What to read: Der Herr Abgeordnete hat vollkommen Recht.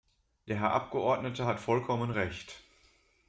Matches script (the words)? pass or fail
pass